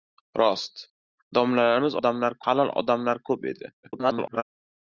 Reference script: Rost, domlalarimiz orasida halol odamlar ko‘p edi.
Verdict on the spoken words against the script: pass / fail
fail